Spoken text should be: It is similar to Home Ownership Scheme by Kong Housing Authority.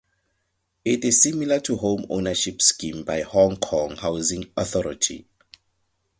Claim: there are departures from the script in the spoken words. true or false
true